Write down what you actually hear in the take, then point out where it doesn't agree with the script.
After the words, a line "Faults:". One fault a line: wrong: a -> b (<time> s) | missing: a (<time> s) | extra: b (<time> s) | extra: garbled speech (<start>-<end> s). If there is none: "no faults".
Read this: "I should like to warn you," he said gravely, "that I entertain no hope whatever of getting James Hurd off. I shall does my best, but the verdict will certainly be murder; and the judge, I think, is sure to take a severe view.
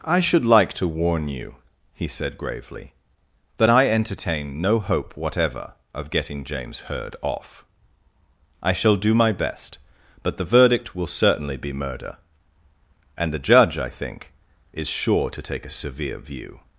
"I should like to warn you," he said gravely, "that I entertain no hope whatever of getting James Hurd off. I shall do my best, but the verdict will certainly be murder; and the judge, I think, is sure to take a severe view.
Faults:
wrong: does -> do (9.0 s)